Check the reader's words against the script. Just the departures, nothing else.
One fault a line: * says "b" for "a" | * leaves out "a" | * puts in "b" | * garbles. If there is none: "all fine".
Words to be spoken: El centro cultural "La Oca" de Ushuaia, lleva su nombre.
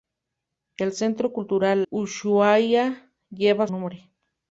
* leaves out "La Oca de"
* leaves out "su"